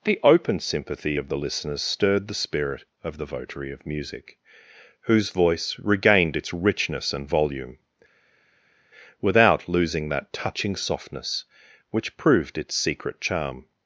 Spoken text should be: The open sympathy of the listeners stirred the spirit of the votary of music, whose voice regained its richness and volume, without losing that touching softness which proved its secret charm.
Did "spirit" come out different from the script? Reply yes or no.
no